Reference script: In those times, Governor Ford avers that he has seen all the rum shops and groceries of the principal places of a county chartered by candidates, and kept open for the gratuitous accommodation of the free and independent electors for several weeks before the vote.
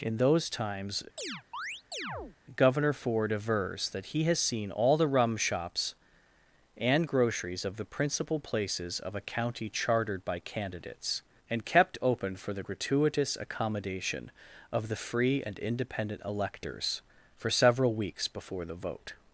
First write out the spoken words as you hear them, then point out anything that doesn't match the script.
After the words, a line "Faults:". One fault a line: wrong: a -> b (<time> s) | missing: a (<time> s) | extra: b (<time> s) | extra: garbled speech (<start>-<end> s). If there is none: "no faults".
In those times, Governor Ford avers that he has seen all the rum shops and groceries of the principal places of a county chartered by candidates, and kept open for the gratuitous accommodation of the free and independent electors for several weeks before the vote.
Faults:
no faults